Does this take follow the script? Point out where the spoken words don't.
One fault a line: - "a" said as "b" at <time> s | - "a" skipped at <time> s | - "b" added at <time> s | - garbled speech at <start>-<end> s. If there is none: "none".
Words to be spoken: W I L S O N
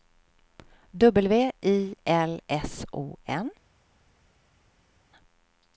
none